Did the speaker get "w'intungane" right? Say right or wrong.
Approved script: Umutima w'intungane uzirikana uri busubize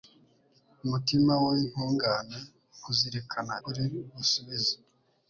right